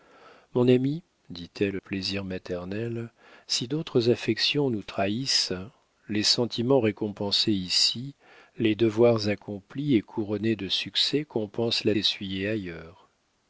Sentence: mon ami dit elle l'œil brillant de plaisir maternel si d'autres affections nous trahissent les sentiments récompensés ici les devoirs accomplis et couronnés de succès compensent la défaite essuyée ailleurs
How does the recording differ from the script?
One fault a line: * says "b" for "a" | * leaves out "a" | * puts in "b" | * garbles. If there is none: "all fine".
* leaves out "l'œil brillant de"
* leaves out "défaite"